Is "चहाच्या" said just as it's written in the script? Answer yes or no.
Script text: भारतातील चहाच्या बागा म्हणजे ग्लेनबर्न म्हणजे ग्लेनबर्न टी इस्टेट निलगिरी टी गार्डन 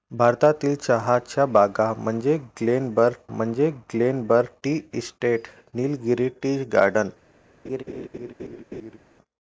yes